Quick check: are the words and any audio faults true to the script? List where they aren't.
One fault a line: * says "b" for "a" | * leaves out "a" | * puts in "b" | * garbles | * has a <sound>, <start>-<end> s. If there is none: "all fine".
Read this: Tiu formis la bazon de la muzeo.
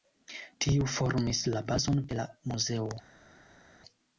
all fine